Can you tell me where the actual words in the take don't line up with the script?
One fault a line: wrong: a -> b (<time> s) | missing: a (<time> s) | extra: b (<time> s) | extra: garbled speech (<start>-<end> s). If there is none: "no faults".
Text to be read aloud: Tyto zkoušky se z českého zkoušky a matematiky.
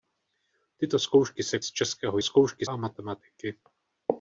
no faults